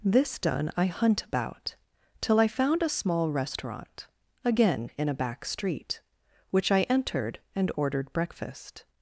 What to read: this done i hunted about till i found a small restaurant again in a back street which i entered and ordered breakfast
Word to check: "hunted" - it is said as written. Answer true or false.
false